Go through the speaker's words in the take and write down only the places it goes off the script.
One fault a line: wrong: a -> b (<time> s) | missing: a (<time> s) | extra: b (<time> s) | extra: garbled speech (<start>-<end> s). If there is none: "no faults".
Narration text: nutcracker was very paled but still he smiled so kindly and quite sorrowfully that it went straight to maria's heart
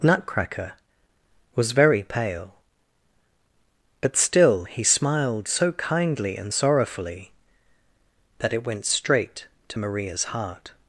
wrong: paled -> pale (2.0 s)
missing: quite (6.5 s)